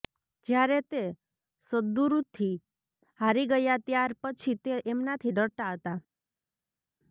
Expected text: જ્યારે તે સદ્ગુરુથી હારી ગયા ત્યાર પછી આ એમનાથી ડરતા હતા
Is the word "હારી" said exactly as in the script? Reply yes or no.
yes